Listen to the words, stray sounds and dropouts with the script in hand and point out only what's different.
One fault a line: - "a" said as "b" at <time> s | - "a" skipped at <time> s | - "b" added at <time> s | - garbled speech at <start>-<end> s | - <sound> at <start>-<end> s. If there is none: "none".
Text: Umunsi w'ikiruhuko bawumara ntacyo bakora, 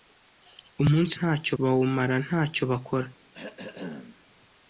- "w'ikiruhuko" said as "ntacyo" at 1.2 s
- throat clearing at 3.3-4.3 s